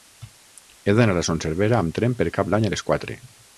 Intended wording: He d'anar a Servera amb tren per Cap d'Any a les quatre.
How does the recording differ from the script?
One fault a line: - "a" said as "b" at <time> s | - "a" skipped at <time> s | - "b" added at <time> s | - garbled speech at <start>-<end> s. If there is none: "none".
- "Son" added at 1.3 s